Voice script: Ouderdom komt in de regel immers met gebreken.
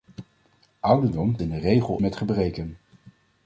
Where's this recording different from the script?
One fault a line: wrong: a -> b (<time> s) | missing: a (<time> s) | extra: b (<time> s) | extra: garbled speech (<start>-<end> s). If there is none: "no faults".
missing: komt (1.4 s)
missing: immers (2.0 s)